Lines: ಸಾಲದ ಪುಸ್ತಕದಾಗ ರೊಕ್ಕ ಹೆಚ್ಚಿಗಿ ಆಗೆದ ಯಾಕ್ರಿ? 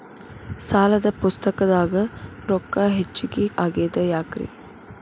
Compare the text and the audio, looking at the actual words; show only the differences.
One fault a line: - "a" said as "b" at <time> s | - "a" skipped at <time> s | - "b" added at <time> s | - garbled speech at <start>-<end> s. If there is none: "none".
none